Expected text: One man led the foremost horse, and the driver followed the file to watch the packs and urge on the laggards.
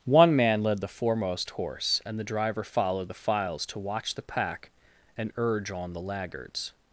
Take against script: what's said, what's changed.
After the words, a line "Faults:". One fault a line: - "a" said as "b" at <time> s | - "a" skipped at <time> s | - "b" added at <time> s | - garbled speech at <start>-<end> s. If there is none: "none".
One man led the foremost horse, and the driver followed the files to watch the pack and urge on the laggards.
Faults:
- "file" said as "files" at 3.1 s
- "packs" said as "pack" at 4.2 s